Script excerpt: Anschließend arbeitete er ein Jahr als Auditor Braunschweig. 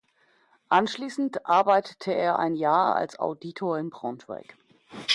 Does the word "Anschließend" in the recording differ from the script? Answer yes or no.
no